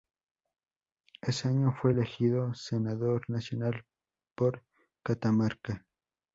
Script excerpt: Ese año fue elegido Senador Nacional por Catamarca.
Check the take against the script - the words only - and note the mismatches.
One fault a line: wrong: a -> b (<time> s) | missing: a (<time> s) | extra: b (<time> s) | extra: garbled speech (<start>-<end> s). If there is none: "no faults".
no faults